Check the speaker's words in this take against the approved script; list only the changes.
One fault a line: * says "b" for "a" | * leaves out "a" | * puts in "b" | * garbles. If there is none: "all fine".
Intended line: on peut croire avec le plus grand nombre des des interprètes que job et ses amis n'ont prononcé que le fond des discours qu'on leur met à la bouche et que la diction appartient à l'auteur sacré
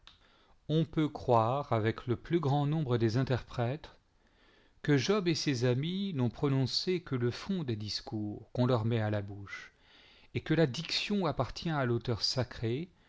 * leaves out "des"